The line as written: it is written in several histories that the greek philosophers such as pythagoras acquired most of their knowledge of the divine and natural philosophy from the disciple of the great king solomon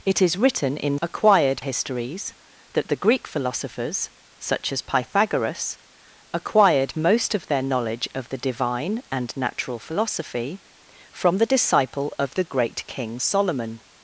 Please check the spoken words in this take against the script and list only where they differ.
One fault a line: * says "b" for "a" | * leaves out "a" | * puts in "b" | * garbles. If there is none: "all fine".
* says "acquired" for "several"